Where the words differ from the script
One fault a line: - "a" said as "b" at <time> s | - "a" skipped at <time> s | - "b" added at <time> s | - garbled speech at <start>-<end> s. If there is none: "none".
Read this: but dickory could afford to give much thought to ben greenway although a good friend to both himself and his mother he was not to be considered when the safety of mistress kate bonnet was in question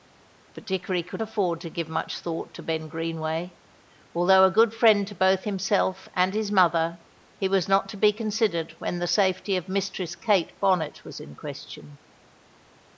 none